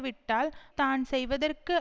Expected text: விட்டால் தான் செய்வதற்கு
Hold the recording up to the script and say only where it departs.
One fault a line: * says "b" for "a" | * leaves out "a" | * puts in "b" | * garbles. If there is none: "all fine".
all fine